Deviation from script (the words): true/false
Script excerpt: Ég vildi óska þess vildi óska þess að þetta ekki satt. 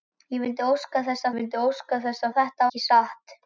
false